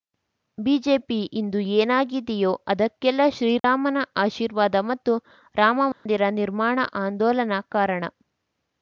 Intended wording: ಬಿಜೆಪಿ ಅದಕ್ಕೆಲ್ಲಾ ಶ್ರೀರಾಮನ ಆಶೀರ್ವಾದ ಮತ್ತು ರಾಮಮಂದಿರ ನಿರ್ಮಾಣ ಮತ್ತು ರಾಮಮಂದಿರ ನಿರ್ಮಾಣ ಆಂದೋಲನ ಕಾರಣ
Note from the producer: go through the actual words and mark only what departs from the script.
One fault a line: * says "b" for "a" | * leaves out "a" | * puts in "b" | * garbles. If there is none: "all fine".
* puts in "ಇಂದು ಏನಾಗಿದೆಯೋ"
* leaves out "ಮತ್ತು ರಾಮಮಂದಿರ ನಿರ್ಮಾಣ"